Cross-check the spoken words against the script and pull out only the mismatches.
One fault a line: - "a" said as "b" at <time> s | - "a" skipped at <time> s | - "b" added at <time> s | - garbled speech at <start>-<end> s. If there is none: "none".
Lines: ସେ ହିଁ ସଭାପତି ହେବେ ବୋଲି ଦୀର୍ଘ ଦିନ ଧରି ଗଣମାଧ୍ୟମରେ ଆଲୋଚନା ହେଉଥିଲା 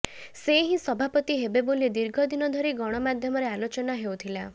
none